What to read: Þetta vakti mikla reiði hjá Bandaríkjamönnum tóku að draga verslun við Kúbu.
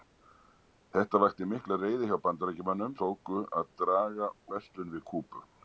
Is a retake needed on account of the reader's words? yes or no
no